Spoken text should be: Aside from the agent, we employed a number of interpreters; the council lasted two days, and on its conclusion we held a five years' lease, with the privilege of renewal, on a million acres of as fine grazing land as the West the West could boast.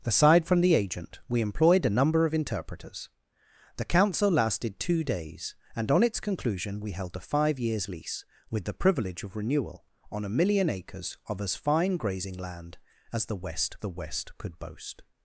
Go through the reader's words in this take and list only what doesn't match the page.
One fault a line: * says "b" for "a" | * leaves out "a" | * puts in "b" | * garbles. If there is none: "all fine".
all fine